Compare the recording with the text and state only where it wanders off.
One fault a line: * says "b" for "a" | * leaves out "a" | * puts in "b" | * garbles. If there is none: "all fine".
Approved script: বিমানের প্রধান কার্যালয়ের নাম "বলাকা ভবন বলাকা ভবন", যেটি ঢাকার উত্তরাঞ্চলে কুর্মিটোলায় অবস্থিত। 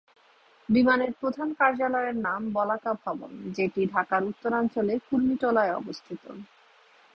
* leaves out "বলাকা ভবন"